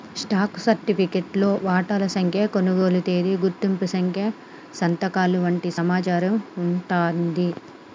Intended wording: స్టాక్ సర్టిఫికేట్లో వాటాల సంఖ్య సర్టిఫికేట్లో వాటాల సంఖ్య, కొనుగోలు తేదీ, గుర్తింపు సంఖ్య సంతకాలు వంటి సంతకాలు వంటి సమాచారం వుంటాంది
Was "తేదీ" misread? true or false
false